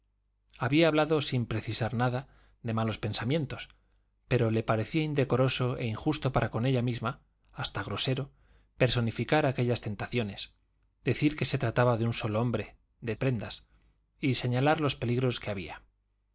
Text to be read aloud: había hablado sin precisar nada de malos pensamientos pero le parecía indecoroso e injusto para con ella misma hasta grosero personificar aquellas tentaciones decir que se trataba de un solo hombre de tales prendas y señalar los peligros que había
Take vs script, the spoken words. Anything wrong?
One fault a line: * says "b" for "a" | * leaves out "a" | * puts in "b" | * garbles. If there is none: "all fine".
* leaves out "tales"